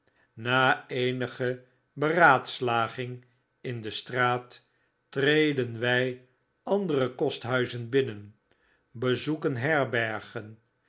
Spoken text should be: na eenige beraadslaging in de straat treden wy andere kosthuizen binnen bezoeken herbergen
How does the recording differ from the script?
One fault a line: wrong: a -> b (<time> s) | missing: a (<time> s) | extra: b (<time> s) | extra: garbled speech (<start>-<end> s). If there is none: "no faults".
no faults